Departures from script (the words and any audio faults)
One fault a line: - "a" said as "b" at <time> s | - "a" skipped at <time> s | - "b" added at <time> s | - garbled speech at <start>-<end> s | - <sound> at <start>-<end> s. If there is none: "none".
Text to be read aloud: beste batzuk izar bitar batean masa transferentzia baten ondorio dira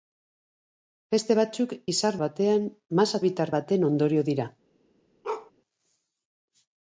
- "bitar" skipped at 2.2 s
- "transferentzia" said as "bitar" at 3.3 s
- bark at 5.2-5.5 s